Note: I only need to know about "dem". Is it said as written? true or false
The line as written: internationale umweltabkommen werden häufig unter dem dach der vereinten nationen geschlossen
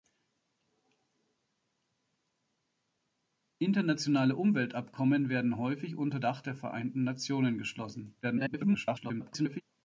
false